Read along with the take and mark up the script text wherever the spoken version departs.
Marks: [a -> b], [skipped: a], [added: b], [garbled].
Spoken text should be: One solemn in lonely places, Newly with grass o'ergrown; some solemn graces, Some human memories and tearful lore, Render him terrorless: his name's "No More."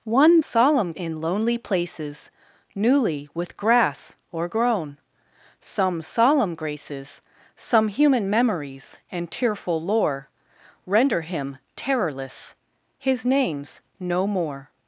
One solemn in lonely places, Newly with grass o'ergrown; some solemn graces, Some human memories and tearful lore, Render him terrorless: his name's "No More."